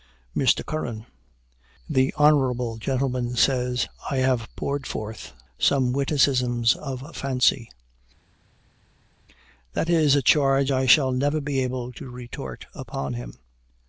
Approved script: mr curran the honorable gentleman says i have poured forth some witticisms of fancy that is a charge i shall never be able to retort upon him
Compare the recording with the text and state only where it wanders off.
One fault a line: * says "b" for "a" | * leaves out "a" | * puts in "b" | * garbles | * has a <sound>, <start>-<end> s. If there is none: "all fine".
all fine